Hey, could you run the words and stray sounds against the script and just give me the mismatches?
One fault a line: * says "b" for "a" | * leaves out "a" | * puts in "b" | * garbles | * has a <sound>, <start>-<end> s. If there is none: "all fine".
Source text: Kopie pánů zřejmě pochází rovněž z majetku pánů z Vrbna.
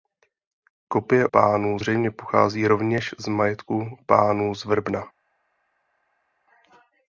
all fine